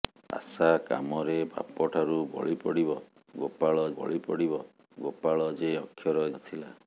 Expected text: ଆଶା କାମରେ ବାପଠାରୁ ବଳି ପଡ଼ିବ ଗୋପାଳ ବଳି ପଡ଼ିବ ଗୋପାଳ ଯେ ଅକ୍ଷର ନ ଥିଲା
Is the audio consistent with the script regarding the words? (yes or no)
yes